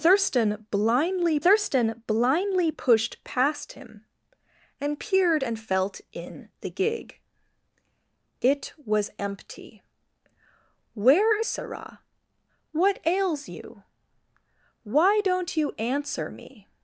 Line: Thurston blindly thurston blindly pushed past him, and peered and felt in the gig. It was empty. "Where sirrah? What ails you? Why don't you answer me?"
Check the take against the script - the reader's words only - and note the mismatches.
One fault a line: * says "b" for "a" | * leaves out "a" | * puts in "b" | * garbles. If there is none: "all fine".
all fine